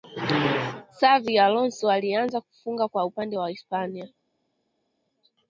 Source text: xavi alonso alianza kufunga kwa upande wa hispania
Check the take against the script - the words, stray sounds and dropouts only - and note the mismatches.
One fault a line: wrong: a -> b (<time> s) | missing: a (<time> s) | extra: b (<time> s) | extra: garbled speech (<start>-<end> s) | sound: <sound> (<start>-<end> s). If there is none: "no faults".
no faults